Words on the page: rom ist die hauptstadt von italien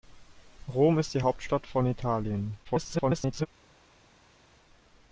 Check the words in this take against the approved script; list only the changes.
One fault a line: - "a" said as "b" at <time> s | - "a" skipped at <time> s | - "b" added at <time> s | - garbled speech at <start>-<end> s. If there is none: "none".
- garbled speech at 2.6-3.5 s